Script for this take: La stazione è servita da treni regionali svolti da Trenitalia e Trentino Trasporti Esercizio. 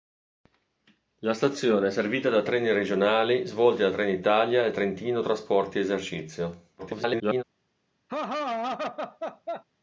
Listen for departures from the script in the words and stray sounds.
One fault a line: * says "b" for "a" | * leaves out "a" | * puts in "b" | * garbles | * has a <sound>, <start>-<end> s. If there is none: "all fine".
* garbles
* has a laugh, 8.1-9.6 s